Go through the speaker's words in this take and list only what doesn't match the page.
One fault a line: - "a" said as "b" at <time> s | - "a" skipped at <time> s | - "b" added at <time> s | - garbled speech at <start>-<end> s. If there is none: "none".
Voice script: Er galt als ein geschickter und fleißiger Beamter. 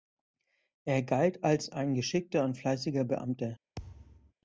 none